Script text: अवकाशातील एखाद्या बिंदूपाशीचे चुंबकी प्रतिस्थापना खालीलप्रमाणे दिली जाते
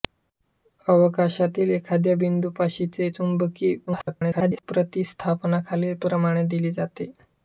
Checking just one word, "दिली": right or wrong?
right